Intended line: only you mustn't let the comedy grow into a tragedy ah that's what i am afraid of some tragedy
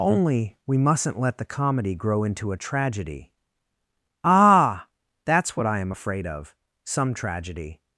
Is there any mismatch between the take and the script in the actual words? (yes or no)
yes